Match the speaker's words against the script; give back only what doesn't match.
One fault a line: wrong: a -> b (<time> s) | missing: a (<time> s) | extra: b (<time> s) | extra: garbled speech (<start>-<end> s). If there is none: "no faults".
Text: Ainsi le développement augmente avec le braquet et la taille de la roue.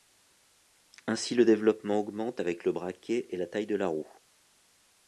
no faults